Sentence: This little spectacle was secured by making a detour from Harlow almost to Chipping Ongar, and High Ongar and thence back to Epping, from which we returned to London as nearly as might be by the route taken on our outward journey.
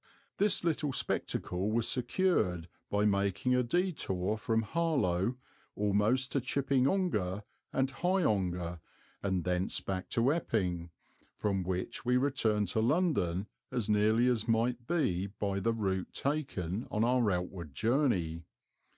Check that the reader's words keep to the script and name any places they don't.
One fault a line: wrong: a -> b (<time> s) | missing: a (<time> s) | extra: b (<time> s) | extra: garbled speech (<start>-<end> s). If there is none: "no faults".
no faults